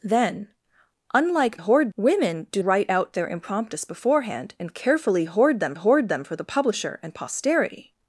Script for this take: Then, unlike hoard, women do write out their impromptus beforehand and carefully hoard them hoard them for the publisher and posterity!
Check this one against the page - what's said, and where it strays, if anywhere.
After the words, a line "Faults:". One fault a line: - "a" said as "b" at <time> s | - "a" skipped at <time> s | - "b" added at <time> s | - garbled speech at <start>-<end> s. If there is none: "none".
Then, unlike hoard, women do write out their impromptus beforehand and carefully hoard them hoard them for the publisher and posterity!
Faults:
none